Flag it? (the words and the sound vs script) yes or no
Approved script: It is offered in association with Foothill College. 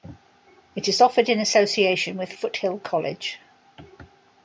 no